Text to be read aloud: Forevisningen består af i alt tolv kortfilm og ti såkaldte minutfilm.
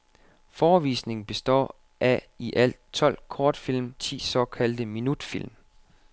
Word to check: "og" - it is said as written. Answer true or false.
false